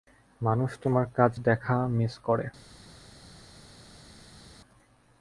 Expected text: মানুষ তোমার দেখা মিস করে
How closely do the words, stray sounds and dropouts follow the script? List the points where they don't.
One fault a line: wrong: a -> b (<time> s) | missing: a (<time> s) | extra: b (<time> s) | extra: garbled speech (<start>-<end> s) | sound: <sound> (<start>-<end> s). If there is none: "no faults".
extra: কাজ (1.2 s)